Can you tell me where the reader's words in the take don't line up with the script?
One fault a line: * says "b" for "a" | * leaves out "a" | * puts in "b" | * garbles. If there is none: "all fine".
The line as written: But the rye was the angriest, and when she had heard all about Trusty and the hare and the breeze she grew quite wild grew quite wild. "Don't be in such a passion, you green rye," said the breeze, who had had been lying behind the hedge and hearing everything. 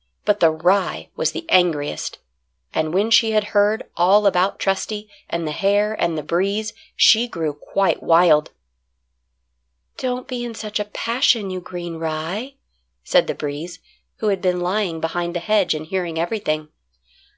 * leaves out "grew quite wild"
* leaves out "had"